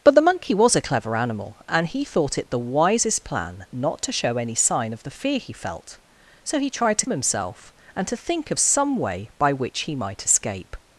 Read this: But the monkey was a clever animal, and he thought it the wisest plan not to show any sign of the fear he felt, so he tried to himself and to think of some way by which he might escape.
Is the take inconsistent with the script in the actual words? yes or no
no